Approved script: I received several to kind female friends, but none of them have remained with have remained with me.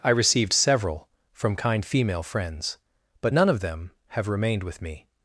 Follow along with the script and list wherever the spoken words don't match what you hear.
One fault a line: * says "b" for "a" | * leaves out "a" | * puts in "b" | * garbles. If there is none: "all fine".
* says "from" for "to"
* leaves out "have remained with"